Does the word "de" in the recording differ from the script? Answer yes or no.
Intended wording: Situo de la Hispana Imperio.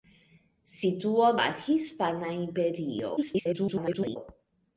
yes